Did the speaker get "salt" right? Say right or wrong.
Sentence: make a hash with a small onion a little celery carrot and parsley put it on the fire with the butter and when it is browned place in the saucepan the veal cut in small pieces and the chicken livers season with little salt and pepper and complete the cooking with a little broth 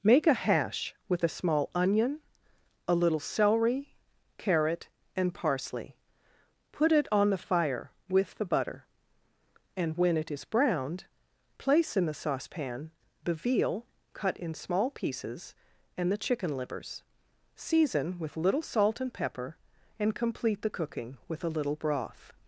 right